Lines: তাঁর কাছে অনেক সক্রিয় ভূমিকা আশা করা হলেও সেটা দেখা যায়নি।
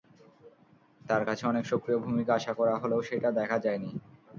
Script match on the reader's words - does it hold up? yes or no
yes